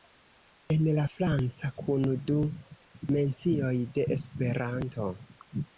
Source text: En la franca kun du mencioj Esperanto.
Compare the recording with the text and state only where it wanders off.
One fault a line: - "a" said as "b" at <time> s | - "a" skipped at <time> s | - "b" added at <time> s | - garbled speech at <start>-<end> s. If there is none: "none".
- "de" added at 4.0 s